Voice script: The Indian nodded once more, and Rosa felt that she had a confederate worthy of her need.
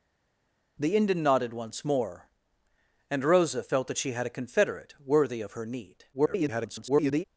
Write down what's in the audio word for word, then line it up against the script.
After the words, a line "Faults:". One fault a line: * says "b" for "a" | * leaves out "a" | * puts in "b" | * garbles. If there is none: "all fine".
The Indian nodded once more, and Rosa felt that she had a confederate worthy of her need. [garbled]
Faults:
* garbles